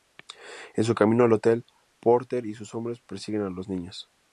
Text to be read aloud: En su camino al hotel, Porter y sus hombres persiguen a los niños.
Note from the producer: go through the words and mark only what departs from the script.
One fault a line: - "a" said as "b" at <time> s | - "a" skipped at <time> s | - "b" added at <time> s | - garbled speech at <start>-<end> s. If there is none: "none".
none